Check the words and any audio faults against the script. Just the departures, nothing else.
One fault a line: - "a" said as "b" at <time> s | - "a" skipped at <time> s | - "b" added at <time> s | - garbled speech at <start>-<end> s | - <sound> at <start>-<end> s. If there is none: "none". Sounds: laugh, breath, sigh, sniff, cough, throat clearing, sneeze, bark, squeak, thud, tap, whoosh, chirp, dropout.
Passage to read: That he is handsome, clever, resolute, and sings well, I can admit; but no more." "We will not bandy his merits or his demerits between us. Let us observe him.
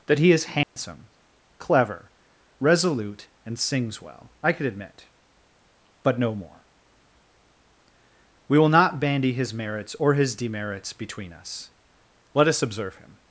- dropout at 0.6-0.8 s
- "can" said as "could" at 4.5 s